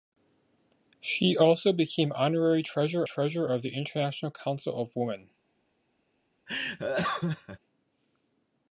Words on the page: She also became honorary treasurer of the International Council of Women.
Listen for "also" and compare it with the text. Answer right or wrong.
right